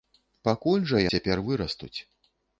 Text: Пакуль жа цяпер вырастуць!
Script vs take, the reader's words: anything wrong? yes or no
no